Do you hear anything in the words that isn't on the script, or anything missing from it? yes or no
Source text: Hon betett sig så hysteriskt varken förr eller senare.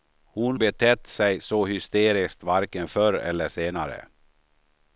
no